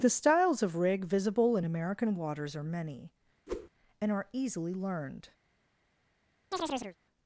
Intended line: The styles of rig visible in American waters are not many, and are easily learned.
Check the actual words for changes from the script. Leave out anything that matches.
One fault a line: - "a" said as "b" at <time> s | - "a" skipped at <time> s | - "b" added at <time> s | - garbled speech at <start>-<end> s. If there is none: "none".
- "not" skipped at 2.6 s